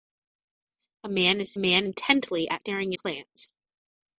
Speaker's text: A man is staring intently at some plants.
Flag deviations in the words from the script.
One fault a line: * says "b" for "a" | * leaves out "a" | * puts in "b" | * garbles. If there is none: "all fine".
* says "man" for "staring"
* says "staring" for "some"